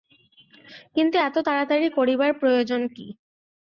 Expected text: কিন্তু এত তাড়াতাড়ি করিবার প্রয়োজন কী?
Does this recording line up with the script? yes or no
yes